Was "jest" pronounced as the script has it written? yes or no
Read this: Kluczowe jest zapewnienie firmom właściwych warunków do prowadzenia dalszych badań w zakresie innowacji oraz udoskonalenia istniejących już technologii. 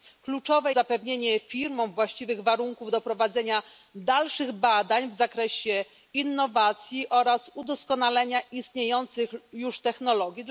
no